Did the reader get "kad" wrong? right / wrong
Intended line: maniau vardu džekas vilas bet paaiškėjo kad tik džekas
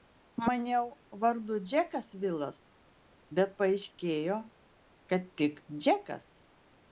right